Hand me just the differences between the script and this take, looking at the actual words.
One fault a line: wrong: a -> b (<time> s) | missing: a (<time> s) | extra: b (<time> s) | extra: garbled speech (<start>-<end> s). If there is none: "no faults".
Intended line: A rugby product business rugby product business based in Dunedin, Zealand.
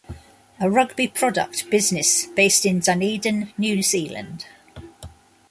missing: rugby product business (2.2 s)
extra: New (3.5 s)